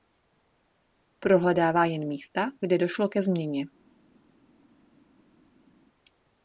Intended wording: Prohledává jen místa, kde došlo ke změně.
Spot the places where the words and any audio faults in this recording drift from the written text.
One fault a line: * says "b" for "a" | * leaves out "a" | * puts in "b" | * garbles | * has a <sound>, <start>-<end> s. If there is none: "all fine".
all fine